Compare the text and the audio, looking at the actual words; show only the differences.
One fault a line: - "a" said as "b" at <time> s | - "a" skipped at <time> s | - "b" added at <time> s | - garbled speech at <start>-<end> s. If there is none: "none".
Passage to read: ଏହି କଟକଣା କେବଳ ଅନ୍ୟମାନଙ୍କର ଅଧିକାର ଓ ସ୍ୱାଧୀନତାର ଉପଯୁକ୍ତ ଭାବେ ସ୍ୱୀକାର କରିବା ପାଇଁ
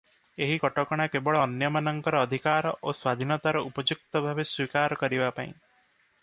none